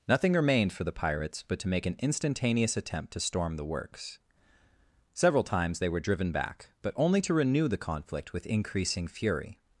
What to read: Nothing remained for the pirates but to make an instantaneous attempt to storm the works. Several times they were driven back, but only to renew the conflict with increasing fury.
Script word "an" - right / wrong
right